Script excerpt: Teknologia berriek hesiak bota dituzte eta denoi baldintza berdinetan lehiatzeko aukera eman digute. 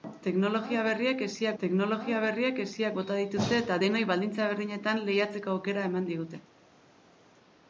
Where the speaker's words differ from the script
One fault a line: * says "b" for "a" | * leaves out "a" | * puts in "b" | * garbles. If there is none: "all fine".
* puts in "teknologia berriek hesiak"